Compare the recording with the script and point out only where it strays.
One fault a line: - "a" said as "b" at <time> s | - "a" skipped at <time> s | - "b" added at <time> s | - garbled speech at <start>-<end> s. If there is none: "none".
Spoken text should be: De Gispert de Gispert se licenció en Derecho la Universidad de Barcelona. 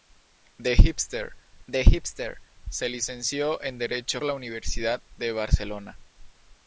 none